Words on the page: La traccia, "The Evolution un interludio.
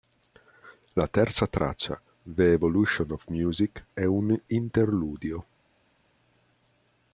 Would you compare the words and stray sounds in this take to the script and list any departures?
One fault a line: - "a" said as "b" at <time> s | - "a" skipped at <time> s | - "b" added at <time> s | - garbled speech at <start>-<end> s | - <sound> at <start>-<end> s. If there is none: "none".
- "terza" added at 1.1 s
- "of Music è" added at 3.1 s